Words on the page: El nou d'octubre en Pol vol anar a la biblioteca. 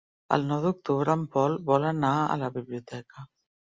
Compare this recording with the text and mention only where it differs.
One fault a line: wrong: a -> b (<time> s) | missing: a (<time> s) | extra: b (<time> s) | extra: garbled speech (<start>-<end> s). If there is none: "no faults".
no faults